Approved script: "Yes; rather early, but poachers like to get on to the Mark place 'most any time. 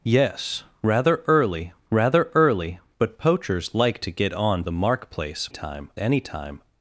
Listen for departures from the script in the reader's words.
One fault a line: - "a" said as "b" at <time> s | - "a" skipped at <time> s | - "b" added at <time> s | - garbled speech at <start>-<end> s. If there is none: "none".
- "rather early" added at 1.9 s
- "to" skipped at 4.6 s
- "most" said as "time" at 5.5 s